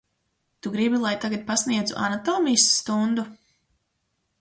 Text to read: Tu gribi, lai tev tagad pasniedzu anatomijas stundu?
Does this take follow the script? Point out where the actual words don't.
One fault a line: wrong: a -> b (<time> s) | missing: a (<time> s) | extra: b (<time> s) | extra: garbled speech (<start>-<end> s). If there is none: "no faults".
missing: tev (1.1 s)